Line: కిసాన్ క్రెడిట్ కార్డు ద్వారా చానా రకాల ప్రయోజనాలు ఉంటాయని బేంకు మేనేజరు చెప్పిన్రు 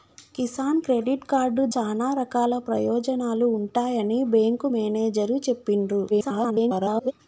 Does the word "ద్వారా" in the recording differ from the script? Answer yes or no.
yes